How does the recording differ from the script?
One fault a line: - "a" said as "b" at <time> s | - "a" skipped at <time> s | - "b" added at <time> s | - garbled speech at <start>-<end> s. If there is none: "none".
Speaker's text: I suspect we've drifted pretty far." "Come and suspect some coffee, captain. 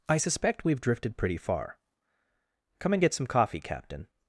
- "suspect" said as "get" at 3.0 s